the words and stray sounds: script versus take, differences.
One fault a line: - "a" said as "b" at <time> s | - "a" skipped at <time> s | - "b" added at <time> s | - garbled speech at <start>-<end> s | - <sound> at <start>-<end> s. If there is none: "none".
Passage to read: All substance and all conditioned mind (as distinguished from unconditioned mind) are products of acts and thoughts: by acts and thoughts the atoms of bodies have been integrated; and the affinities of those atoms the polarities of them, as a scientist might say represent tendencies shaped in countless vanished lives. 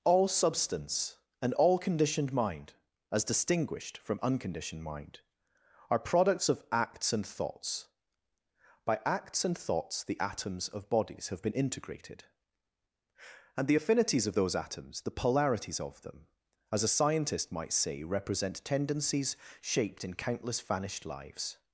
none